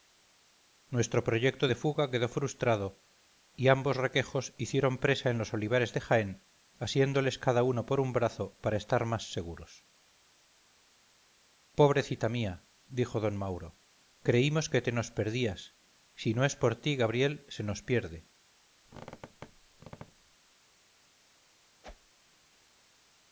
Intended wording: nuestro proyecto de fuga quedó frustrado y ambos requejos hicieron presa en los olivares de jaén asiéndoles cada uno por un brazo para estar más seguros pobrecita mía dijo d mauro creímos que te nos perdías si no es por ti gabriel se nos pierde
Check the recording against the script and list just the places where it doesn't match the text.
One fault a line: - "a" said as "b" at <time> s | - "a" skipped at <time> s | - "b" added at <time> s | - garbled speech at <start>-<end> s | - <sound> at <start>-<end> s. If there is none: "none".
- squeak at 18.9-20.4 s
- whoosh at 21.8-22.1 s